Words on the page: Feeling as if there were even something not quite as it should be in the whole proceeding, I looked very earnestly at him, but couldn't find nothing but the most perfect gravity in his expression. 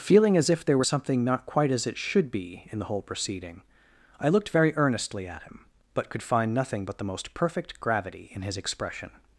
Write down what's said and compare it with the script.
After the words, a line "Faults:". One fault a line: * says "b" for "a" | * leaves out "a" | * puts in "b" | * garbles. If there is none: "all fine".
Feeling as if there were something not quite as it should be in the whole proceeding, I looked very earnestly at him, but could find nothing but the most perfect gravity in his expression.
Faults:
* leaves out "even"
* says "could" for "couldn't"